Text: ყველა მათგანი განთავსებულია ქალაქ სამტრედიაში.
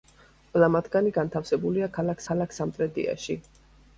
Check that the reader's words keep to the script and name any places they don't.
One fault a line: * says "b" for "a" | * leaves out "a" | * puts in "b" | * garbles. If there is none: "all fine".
* puts in "ქალაქ"